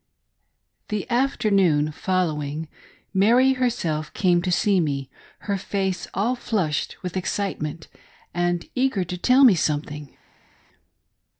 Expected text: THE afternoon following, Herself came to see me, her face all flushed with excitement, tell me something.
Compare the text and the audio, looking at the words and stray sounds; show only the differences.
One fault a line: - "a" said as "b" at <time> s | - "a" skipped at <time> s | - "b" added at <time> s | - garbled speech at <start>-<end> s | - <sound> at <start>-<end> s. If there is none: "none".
- "Mary" added at 3.1 s
- "and eager to" added at 8.3 s